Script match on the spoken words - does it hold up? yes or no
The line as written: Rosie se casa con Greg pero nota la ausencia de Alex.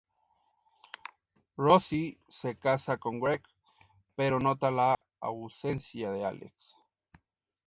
yes